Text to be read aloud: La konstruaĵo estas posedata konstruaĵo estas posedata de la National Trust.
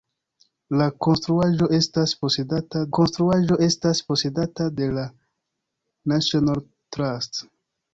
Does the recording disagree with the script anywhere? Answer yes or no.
no